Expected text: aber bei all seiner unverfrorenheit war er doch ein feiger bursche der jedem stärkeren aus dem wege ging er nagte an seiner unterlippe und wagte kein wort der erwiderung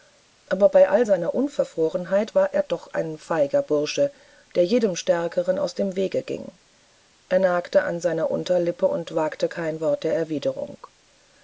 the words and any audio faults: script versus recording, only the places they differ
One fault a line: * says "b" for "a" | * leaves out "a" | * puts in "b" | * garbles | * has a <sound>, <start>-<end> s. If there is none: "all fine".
all fine